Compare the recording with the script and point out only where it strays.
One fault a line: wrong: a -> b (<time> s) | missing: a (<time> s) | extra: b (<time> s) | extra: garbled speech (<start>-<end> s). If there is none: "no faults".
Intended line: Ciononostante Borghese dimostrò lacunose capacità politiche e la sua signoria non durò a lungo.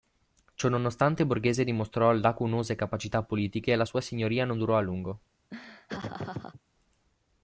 no faults